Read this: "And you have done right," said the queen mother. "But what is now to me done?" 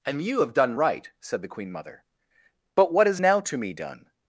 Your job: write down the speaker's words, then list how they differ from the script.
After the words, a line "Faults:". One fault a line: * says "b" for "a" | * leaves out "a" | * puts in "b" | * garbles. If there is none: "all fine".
"And you have done right," said the queen mother. "But what is now to me done?"
Faults:
all fine